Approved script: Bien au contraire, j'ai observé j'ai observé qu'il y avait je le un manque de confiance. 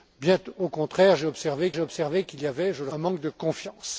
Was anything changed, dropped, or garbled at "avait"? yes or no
no